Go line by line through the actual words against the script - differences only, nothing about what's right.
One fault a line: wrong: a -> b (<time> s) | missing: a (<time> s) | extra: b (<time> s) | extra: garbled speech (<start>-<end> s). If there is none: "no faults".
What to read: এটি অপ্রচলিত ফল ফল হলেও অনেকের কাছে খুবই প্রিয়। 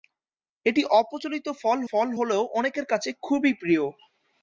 no faults